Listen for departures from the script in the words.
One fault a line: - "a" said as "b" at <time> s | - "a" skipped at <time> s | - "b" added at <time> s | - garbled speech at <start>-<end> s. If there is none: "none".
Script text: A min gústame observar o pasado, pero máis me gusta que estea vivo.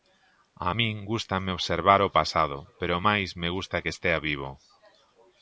none